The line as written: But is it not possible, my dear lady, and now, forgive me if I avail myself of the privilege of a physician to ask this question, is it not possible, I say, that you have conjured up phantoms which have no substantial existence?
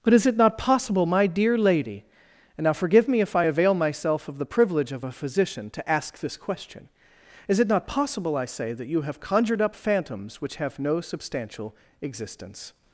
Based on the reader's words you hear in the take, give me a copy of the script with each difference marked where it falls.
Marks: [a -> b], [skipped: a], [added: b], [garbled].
But is it not possible, my dear lady, and now, forgive me if I avail myself of the privilege of a physician to ask this question, is it not possible, I say, that you have conjured up phantoms which have no substantial existence?